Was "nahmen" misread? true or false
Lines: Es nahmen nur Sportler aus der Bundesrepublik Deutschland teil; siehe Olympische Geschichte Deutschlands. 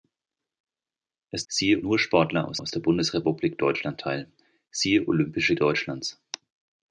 true